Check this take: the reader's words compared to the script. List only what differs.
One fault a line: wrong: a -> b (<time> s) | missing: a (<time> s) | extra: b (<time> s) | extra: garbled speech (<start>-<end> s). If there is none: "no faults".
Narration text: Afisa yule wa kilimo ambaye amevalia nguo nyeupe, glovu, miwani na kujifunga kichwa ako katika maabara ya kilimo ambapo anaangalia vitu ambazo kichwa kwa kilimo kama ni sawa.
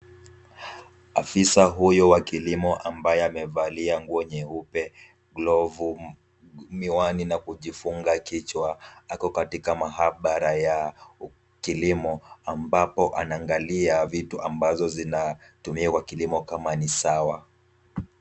wrong: yule -> huyu (1.6 s)
wrong: kichwa -> zinatumiwa (14.9 s)